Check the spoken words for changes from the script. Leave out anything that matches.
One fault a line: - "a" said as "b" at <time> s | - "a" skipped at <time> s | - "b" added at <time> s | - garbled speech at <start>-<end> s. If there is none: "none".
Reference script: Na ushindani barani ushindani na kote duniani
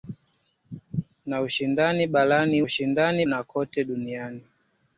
none